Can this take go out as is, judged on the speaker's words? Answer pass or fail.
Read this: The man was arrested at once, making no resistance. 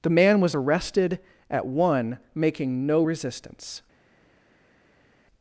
fail